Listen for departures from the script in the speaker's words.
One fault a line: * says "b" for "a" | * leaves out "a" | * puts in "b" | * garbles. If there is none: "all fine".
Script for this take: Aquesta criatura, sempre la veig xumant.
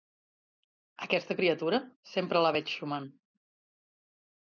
all fine